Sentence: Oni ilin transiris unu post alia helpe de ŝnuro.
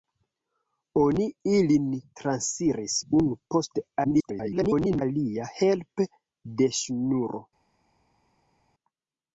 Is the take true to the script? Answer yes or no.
no